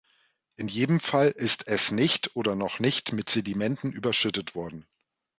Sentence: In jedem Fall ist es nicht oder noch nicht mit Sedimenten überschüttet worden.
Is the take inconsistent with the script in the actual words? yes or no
no